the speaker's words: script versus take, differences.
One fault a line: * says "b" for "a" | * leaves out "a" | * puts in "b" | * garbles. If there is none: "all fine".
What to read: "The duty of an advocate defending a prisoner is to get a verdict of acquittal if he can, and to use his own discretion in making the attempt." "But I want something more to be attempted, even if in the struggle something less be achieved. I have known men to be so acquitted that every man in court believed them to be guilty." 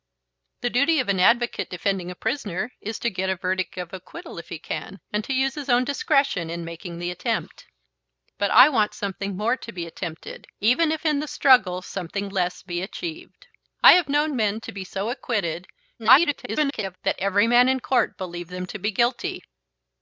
* garbles